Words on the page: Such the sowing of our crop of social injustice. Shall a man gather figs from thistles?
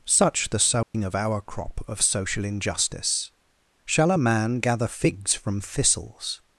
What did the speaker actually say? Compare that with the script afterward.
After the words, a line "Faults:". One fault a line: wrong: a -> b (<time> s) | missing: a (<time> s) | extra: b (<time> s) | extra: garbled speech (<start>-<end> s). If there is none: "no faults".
Such the sowing of our crop of social injustice. Shall a man gather figs from thistles?
Faults:
no faults